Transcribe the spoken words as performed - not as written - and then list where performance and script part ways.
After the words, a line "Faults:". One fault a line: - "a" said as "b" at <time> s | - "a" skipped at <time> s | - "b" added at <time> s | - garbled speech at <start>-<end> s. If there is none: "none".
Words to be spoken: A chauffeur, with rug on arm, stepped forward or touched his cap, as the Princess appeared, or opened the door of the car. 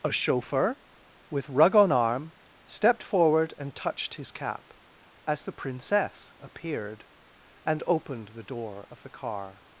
A chauffeur, with rug on arm, stepped forward and touched his cap, as the Princess appeared, and opened the door of the car.
Faults:
- "or" said as "and" at 3.6 s
- "or" said as "and" at 7.7 s